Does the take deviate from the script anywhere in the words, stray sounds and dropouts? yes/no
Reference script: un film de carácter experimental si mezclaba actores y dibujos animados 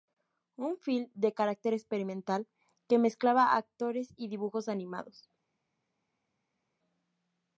yes